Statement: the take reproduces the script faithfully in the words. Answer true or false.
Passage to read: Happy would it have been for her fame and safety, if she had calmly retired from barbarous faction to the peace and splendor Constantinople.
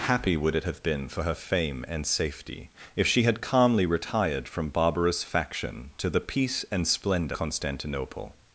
true